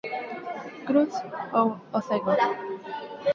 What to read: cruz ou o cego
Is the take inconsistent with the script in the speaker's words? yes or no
no